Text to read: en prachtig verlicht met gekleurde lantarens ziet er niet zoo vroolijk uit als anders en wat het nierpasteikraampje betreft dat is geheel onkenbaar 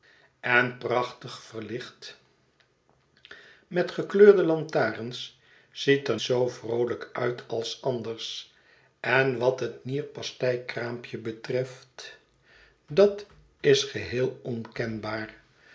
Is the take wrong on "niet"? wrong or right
wrong